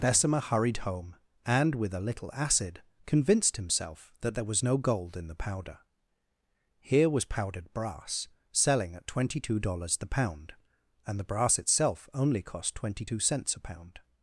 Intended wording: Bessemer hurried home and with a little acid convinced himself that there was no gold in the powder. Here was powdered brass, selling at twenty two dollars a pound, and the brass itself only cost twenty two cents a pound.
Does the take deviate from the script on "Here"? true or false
false